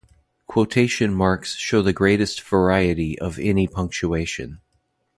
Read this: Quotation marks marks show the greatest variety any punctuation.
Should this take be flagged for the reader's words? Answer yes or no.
yes